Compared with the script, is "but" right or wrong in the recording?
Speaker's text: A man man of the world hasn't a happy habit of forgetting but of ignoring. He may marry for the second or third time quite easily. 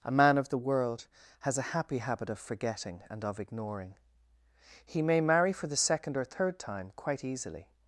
wrong